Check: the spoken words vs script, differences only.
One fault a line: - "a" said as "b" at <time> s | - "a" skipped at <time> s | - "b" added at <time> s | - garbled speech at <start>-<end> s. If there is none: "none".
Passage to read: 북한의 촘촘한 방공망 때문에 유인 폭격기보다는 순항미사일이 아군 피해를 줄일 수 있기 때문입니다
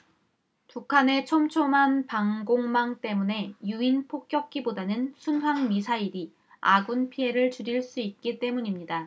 none